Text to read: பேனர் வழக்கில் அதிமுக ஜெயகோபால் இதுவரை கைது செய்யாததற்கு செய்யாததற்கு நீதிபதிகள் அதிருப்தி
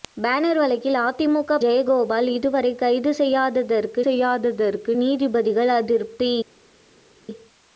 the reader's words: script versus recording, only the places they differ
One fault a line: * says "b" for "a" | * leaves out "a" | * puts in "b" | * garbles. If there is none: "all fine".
all fine